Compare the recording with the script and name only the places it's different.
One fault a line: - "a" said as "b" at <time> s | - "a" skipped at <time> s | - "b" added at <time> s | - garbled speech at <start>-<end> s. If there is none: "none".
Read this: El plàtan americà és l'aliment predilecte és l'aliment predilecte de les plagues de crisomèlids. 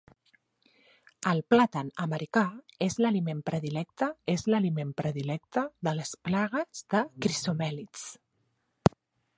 none